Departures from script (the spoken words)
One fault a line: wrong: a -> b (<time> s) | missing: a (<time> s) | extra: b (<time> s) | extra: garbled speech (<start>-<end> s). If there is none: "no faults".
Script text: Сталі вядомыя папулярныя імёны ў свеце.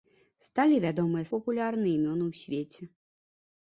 no faults